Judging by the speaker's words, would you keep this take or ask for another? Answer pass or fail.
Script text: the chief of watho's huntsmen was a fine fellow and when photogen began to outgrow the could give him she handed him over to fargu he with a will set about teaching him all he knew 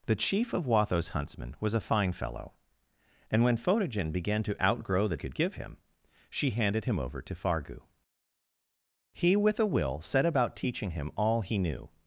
pass